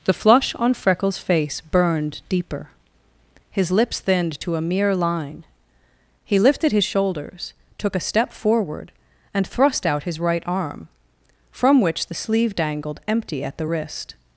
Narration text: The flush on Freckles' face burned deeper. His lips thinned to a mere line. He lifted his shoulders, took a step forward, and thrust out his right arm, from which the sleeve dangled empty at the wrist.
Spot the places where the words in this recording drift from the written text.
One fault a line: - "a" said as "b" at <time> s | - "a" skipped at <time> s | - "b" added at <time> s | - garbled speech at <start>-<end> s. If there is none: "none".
none